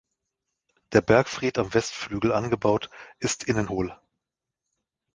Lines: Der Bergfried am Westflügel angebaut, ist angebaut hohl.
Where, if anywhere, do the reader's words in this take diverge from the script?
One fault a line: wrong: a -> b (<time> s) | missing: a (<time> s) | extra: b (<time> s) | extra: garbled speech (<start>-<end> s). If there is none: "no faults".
wrong: angebaut -> innen (3.4 s)